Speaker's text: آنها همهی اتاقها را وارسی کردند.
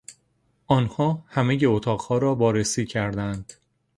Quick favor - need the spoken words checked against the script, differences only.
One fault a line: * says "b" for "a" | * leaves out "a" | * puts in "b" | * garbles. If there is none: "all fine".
all fine